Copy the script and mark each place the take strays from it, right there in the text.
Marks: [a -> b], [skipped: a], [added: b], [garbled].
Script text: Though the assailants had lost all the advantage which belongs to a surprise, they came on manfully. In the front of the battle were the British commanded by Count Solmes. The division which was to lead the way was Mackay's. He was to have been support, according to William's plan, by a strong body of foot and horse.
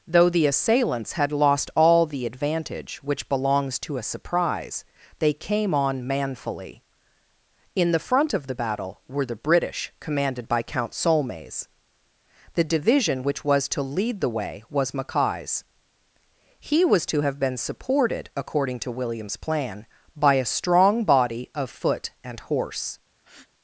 Though the assailants had lost all the advantage which belongs to a surprise, they came on manfully. In the front of the battle were the British commanded by Count Solmes. The division which was to lead the way was Mackay's. He was to have been [support, -> supported] according to William's plan, by a strong body of foot and horse.